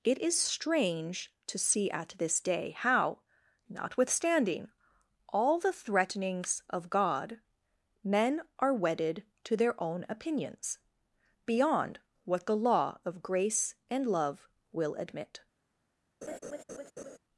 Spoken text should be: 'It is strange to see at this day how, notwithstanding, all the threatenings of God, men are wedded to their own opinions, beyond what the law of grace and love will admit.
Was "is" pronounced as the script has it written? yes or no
yes